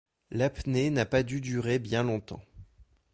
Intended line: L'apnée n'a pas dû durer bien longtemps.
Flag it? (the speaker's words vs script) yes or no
no